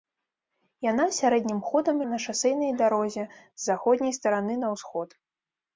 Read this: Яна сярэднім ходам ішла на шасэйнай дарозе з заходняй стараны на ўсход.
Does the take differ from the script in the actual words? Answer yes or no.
yes